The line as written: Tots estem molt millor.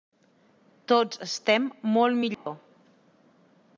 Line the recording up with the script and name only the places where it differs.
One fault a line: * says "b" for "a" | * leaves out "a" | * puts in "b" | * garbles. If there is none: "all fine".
all fine